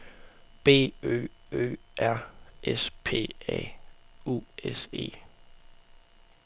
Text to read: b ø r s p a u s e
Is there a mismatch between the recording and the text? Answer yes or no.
yes